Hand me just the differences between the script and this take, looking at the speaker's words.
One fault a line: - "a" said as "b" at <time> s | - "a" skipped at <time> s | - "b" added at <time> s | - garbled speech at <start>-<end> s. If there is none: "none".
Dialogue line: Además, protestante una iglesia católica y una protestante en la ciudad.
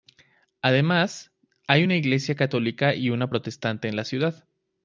- "protestante" said as "hay" at 1.7 s